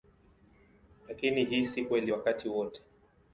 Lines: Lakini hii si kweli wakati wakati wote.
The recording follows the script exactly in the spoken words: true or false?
false